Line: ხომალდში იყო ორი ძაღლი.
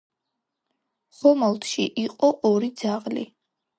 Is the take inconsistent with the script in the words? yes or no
no